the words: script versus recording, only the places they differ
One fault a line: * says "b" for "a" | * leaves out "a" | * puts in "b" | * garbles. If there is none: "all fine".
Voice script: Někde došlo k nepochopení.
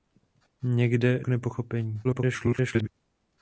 * leaves out "došlo"
* garbles